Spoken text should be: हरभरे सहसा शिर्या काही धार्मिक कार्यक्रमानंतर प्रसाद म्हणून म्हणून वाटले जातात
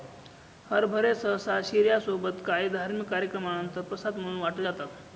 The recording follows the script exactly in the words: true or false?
false